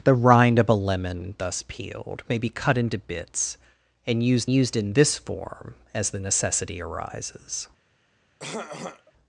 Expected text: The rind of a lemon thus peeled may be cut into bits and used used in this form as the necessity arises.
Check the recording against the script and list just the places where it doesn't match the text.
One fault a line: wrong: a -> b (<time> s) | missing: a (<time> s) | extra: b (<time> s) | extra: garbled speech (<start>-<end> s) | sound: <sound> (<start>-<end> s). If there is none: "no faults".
sound: throat clearing (8.4-9.1 s)